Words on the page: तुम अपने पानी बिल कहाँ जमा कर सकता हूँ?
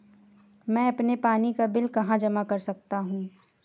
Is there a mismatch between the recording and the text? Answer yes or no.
yes